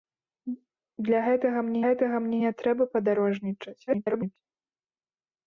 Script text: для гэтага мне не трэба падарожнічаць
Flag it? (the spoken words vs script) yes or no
yes